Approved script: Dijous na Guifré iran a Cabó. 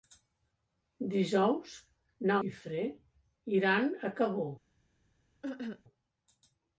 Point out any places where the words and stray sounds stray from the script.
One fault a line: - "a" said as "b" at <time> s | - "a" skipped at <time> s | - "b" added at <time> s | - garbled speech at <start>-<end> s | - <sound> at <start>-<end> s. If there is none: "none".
- cough at 5.4-5.8 s